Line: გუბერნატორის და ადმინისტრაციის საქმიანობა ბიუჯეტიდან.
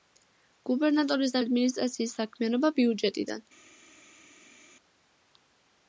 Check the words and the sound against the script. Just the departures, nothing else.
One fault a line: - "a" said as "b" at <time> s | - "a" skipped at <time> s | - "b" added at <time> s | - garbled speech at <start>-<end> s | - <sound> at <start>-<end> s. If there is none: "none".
none